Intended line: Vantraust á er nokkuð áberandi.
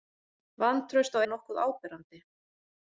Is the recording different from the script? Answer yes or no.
no